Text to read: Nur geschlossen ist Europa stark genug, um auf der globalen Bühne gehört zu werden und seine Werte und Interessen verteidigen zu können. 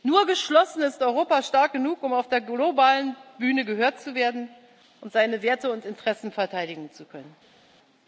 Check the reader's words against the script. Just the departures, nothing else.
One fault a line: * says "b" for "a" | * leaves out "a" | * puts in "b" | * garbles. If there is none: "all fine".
all fine